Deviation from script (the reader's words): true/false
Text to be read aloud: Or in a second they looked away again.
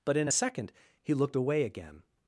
true